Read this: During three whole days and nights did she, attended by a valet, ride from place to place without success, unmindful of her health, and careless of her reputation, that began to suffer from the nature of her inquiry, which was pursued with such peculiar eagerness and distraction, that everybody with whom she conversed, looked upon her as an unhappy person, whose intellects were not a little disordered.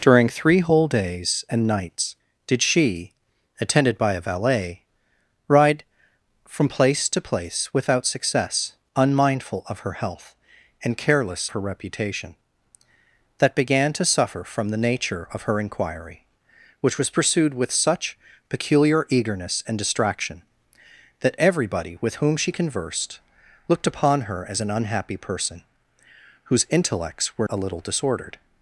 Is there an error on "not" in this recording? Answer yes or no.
yes